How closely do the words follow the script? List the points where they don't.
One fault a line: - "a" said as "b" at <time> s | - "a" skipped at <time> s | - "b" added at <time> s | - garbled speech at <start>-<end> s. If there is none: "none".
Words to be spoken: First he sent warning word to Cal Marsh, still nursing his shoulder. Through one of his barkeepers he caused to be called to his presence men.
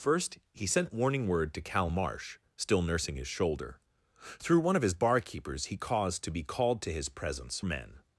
none